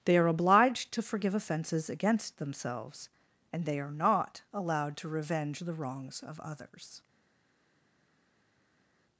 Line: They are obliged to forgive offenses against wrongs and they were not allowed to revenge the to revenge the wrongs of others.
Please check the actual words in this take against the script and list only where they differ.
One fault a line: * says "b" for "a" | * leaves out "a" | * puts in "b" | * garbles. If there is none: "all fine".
* says "themselves" for "wrongs"
* says "are" for "were"
* leaves out "to revenge the"